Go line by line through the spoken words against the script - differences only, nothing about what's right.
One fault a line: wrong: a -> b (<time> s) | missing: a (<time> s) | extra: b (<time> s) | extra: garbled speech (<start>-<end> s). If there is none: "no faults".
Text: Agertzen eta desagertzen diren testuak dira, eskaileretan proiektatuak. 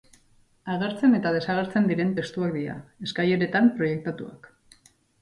no faults